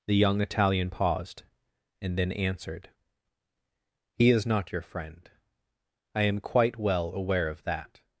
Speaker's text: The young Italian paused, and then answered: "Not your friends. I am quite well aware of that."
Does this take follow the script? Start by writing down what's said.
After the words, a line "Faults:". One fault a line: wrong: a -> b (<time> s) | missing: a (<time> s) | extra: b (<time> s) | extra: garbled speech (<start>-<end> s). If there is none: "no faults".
The young Italian paused, and then answered: "He is not your friend. I am quite well aware of that."
Faults:
extra: He is (4.2 s)
wrong: friends -> friend (4.8 s)